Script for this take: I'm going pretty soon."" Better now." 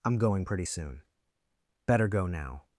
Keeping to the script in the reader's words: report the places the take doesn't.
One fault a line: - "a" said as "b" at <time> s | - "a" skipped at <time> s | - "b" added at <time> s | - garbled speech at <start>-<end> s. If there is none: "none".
- "go" added at 2.0 s